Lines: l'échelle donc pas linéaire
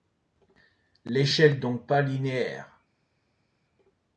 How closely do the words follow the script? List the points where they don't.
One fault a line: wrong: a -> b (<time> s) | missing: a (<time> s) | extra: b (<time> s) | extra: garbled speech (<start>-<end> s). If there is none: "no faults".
no faults